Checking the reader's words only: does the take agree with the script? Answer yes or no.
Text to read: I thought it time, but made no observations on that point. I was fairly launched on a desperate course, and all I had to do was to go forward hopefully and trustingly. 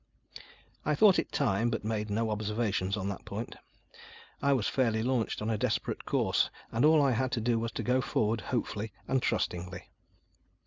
yes